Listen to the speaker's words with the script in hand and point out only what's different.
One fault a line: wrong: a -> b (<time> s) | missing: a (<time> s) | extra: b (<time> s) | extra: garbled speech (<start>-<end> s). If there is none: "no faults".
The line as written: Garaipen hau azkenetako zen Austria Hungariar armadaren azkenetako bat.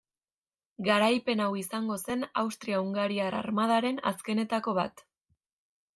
wrong: azkenetako -> izango (1.6 s)